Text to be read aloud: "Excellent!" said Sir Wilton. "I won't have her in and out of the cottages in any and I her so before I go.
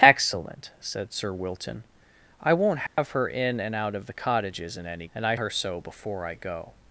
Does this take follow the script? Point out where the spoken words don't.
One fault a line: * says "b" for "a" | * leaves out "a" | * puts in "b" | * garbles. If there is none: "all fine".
all fine